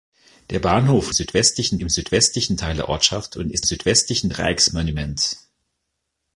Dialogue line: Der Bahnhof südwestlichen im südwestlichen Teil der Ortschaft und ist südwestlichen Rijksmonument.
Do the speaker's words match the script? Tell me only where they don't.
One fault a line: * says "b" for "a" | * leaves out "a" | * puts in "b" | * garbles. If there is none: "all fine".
all fine